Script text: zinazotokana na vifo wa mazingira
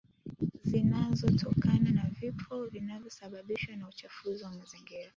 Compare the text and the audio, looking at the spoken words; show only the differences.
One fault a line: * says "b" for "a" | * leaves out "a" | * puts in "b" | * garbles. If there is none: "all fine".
* puts in "vinavyosababishwa na uchafuzi"